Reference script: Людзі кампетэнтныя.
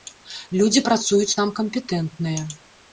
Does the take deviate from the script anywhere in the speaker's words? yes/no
yes